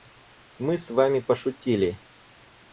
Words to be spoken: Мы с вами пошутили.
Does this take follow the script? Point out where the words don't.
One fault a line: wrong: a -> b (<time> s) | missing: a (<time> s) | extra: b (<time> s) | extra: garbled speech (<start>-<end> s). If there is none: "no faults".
no faults